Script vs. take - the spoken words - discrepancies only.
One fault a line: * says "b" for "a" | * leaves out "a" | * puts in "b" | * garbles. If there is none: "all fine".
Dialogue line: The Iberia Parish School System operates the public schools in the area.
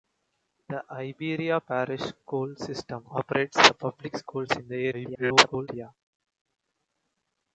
* garbles